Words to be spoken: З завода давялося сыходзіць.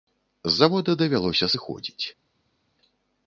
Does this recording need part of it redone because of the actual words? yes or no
no